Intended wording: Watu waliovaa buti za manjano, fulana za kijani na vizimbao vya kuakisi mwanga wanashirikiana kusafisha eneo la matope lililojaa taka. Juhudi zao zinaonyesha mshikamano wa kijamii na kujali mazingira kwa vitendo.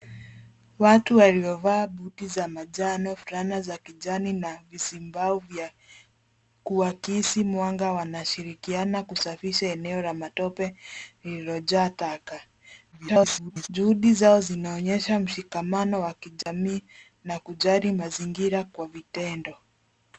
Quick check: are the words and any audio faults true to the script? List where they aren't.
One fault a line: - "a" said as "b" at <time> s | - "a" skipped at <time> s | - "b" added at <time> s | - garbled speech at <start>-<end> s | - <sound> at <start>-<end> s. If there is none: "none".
- garbled speech at 12.9-13.7 s
- dropout at 16.4-16.5 s